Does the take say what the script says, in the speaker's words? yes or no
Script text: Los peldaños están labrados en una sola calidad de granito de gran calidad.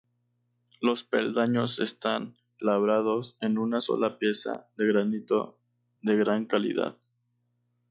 no